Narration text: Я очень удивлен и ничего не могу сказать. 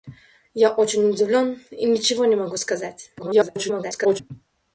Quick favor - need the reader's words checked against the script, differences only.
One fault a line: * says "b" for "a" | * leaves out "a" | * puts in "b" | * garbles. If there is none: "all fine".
* garbles